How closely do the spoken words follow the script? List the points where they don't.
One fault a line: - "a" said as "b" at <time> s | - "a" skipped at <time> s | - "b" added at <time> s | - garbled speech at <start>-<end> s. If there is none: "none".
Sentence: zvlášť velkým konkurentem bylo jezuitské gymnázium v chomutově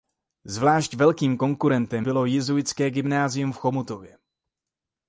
none